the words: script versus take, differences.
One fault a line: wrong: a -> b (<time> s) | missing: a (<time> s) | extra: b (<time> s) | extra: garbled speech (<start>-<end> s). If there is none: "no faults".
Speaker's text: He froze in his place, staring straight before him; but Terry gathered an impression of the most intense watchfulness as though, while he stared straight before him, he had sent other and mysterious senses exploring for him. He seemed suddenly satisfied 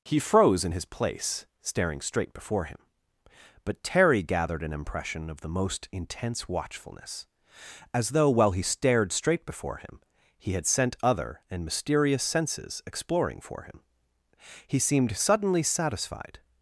no faults